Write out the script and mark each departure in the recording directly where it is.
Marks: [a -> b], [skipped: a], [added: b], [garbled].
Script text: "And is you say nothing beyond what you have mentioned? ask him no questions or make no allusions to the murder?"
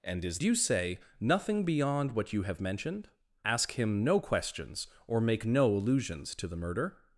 "And is you say nothing beyond what you have mentioned? ask him no questions or make no allusions to the murder?"